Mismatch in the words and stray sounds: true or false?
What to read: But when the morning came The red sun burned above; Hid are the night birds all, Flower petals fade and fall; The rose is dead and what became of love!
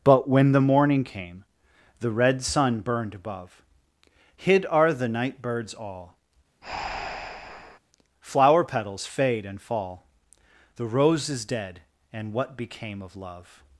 true